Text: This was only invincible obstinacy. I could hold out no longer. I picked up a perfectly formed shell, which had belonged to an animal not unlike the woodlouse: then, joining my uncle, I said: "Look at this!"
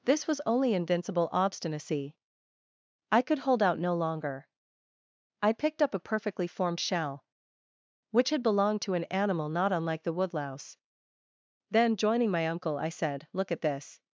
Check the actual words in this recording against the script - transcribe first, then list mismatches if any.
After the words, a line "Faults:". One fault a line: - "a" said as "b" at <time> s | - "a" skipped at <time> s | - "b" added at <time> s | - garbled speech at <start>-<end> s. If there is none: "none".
This was only invincible obstinacy. I could hold out no longer. I picked up a perfectly formed shell, which had belonged to an animal not unlike the woodlouse: then, joining my uncle, I said: "Look at this!"
Faults:
none